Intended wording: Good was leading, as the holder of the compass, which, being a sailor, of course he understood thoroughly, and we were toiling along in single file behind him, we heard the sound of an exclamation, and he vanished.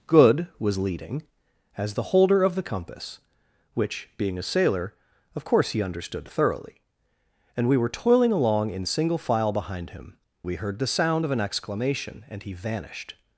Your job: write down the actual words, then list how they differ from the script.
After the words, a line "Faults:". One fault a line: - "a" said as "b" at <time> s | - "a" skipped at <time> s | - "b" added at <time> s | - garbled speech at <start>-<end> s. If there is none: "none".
Good was leading, as the holder of the compass, which, being a sailor, of course he understood thoroughly, and we were toiling along in single file behind him, we heard the sound of an exclamation, and he vanished.
Faults:
none